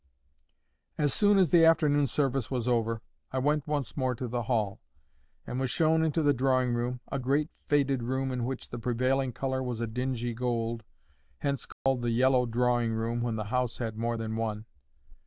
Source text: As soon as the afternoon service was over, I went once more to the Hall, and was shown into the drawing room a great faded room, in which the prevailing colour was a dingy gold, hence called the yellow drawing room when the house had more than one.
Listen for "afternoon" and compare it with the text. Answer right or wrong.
right